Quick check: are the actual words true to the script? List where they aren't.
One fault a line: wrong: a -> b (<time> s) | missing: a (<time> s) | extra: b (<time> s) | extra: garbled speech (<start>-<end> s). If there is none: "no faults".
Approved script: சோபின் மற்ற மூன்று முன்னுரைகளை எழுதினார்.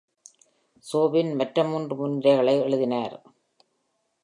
no faults